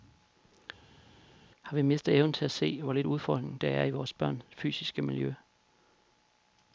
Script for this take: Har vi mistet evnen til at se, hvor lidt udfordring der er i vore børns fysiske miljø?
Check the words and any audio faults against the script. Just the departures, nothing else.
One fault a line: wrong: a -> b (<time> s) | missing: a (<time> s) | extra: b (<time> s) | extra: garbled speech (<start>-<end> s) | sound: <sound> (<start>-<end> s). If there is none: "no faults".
no faults